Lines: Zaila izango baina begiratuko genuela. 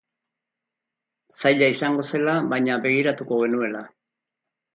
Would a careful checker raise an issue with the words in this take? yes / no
yes